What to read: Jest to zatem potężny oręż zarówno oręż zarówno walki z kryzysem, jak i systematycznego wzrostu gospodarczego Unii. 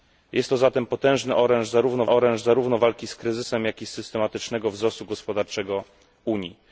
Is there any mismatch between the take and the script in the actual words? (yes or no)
no